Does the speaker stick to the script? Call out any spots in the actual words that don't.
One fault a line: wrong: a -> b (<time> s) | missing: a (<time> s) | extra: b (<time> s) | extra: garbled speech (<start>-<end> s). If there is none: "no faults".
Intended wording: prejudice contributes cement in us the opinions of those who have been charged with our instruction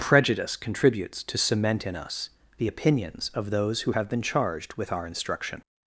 extra: to (1.2 s)